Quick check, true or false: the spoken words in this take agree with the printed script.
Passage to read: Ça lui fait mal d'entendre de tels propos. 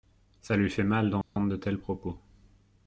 true